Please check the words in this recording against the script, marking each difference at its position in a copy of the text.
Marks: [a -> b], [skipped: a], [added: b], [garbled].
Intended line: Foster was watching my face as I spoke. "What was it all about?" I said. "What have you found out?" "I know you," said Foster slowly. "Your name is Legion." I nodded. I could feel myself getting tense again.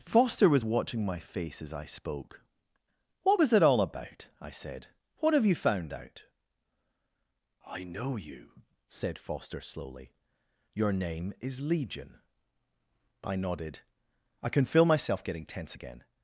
Foster was watching my face as I spoke. "What was it all about?" I said. "What have you found out?" "I know you," said Foster slowly. "Your name is Legion." I nodded. I [could -> can] feel myself getting tense again.